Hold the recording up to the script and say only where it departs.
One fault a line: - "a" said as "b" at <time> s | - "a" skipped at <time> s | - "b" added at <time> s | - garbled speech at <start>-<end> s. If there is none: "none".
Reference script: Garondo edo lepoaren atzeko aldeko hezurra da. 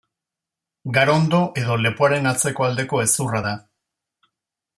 none